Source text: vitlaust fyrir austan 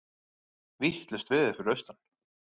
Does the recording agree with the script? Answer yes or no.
no